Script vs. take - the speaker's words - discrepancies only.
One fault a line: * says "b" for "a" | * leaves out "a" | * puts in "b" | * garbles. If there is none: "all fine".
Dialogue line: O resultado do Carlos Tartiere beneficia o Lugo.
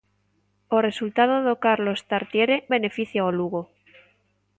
all fine